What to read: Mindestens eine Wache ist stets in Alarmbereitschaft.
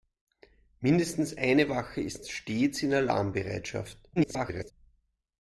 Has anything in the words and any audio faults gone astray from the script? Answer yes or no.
yes